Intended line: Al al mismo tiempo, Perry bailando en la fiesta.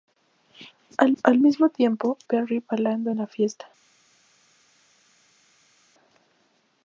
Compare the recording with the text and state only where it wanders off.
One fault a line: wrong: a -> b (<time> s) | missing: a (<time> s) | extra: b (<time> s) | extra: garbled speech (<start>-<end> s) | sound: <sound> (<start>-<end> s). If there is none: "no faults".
no faults